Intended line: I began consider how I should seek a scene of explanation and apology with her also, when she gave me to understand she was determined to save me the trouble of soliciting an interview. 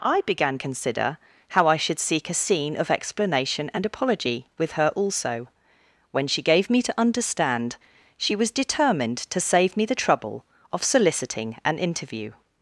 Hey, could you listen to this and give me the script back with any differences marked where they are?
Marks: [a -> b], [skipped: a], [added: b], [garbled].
I began consider how I should seek a scene of explanation and apology with her also, when she gave me to understand she was determined to save me the trouble of soliciting an interview.